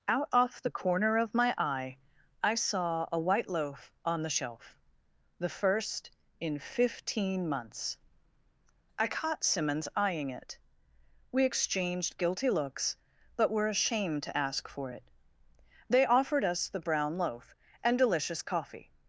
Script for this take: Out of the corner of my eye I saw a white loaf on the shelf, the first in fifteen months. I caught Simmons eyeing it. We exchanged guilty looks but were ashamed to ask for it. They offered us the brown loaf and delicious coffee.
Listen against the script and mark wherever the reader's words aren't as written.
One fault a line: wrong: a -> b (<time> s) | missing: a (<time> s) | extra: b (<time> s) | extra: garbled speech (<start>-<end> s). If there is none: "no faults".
wrong: of -> off (0.3 s)